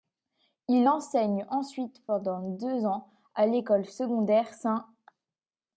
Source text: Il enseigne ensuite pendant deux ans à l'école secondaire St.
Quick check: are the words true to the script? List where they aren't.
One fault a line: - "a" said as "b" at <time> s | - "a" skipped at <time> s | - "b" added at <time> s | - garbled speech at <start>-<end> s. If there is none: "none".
none